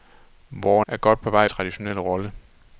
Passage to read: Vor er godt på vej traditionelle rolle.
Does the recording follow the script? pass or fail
pass